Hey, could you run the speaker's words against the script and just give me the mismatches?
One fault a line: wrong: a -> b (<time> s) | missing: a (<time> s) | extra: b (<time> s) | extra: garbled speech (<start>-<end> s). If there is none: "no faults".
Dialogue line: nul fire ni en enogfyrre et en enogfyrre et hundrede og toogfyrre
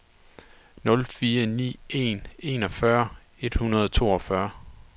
missing: en enogfyrre et (3.5 s)